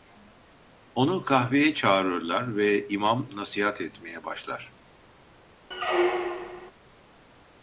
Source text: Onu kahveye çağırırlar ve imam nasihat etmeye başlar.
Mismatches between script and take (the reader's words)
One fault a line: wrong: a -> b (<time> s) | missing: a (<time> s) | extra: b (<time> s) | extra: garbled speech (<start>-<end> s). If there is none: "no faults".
no faults